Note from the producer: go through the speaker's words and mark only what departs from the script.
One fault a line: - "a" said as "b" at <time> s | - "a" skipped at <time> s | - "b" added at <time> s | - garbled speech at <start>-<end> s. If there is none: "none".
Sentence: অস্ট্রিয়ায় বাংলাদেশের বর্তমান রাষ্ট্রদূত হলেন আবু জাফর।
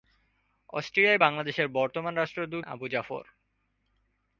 - "হলেন" skipped at 2.6 s